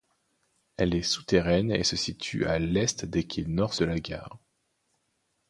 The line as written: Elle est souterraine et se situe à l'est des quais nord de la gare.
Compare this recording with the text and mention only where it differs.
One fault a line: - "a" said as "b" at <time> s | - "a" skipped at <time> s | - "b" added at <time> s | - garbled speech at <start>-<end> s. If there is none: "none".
none